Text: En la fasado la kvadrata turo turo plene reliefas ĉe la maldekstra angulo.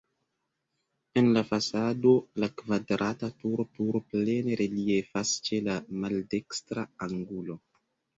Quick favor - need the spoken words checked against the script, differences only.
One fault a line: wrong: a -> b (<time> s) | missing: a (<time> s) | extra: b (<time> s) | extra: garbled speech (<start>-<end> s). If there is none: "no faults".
no faults